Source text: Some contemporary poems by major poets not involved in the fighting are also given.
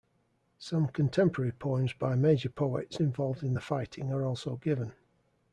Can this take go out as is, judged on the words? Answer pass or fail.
fail